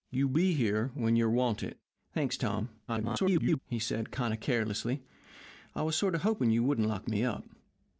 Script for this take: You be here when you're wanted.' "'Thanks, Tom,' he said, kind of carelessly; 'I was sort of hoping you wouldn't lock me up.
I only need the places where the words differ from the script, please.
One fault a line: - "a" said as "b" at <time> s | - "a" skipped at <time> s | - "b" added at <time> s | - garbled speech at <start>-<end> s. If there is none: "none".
- garbled speech at 2.9-3.6 s